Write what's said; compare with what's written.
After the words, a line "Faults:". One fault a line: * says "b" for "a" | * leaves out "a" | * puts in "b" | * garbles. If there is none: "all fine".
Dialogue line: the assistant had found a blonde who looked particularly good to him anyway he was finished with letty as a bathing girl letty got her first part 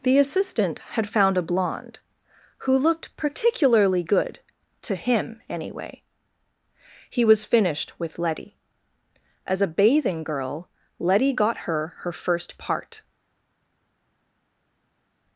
the assistant had found a blonde who looked particularly good to him anyway he was finished with letty as a bathing girl letty got her her first part
Faults:
* puts in "her"